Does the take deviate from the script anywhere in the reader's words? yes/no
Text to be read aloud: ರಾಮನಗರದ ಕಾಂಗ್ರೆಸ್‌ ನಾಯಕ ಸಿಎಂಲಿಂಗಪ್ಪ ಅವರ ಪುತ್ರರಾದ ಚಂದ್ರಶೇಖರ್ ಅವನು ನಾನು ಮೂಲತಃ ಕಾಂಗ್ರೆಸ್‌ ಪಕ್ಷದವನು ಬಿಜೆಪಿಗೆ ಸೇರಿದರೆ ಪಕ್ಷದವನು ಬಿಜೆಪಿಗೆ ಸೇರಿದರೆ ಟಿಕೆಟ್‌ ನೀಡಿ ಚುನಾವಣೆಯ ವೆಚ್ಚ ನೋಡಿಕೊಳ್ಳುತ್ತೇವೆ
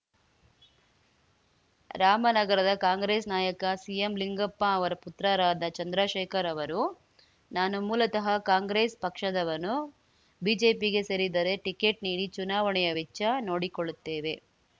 yes